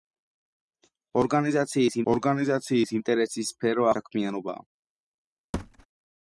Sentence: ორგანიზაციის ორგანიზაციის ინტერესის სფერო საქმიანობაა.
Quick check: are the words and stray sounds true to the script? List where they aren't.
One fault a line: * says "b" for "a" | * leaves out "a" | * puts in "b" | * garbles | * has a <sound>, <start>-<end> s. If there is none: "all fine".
* has a thud, 5.5-5.9 s